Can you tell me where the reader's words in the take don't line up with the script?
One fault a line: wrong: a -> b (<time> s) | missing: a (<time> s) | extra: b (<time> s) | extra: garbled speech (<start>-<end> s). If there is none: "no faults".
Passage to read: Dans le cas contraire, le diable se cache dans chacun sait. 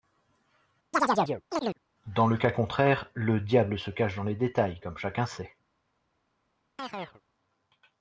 extra: les détails comme (4.2 s)